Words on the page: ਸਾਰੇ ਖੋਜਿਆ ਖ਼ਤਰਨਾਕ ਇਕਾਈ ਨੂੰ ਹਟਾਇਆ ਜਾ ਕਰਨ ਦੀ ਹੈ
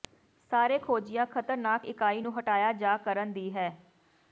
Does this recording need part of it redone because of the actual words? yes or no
no